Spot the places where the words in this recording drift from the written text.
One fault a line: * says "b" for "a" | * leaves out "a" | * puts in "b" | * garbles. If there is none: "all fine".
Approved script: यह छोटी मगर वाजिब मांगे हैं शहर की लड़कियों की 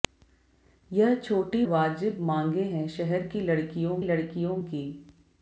* leaves out "मगर"
* puts in "लड़कियों"